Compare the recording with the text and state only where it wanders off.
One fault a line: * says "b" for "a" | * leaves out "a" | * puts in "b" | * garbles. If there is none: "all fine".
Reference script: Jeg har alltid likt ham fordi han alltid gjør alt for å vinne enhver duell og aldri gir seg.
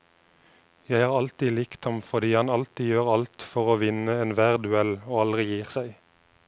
all fine